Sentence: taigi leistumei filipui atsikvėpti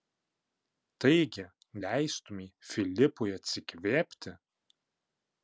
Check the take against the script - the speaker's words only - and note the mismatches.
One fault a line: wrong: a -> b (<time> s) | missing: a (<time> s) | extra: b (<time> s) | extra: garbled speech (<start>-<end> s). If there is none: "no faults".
no faults